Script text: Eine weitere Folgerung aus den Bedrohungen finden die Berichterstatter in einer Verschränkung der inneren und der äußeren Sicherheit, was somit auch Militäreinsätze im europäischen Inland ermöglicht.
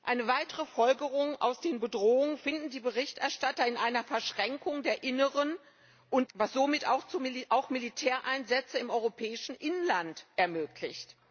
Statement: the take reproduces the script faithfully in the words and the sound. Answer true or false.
false